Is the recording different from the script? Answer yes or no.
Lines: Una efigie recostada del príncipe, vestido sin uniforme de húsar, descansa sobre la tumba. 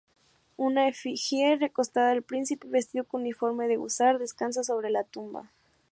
yes